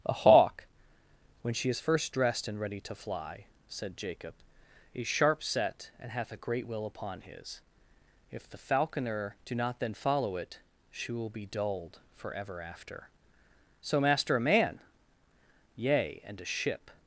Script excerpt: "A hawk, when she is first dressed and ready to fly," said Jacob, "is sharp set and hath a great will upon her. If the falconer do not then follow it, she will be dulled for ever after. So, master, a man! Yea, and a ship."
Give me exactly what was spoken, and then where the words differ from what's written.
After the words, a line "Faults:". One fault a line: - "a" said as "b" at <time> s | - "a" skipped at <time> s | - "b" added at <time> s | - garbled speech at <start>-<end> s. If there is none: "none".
"A hawk, when she is first dressed and ready to fly," said Jacob, "is sharp set and hath a great will upon his. If the falconer do not then follow it, she will be dulled for ever after. So, master, a man! Yea, and a ship."
Faults:
- "her" said as "his" at 7.2 s